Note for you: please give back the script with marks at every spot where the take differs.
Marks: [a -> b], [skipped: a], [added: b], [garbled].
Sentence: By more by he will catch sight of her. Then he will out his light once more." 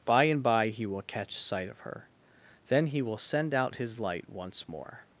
By [more -> and] by he will catch sight of her. Then he will [added: send] out his light once more."